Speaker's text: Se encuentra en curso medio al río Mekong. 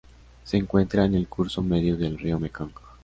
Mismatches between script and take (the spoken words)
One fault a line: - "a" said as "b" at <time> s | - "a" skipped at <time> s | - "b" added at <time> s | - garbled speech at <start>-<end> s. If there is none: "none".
- "el" added at 1.1 s
- "al" said as "del" at 1.9 s